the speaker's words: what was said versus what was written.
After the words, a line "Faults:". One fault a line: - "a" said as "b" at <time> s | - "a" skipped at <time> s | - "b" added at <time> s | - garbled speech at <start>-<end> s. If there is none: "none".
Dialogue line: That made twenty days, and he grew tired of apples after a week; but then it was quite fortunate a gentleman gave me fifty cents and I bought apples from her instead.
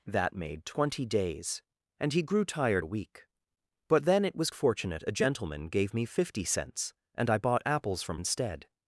That made twenty days, and he grew tired a week; but then it was fortunate a gentleman gave me fifty cents and I bought apples from instead.
Faults:
- "of apples after" skipped at 2.9 s
- "quite" skipped at 4.5 s
- "her" skipped at 8.2 s